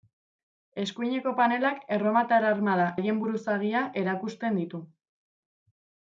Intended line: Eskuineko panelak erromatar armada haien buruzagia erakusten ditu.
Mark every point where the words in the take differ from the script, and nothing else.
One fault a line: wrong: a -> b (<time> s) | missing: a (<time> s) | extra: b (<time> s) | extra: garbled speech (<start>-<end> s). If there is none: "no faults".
no faults